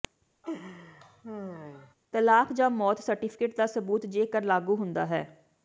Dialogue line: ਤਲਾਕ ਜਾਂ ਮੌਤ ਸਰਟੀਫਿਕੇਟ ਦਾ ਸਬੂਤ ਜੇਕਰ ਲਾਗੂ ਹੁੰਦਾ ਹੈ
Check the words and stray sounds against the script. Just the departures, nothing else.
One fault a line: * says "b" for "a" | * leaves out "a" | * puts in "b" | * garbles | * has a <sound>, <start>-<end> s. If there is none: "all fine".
* has a laugh, 0.4-1.9 s